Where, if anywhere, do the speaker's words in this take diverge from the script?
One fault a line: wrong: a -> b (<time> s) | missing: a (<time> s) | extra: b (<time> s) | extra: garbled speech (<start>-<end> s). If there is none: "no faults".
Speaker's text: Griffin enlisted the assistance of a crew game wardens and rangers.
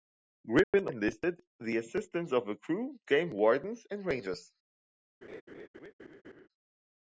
no faults